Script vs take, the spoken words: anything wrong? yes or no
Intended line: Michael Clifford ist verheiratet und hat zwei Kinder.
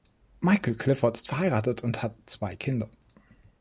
no